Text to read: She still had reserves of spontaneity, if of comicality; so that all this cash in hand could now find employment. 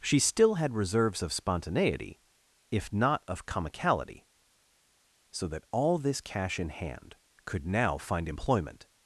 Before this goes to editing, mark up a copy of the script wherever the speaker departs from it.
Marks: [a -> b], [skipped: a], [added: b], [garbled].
She still had reserves of spontaneity, if [added: not] of comicality; so that all this cash in hand could now find employment.